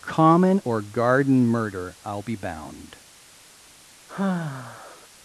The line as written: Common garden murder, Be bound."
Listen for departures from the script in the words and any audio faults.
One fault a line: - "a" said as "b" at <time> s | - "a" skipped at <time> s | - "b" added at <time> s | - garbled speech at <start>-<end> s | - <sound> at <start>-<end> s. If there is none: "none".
- "or" added at 0.6 s
- "I'll" added at 2.1 s
- sigh at 4.1-5.1 s